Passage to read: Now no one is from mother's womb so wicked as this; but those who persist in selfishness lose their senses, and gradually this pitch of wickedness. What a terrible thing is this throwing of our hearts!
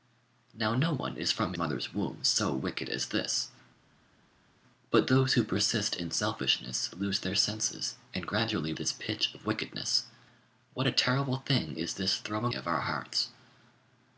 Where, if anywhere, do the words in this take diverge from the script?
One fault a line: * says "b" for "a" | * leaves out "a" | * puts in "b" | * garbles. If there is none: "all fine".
all fine